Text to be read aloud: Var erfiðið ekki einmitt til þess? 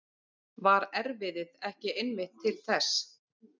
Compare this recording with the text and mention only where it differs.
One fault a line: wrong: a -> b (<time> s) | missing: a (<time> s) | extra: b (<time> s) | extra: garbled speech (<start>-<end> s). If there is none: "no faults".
no faults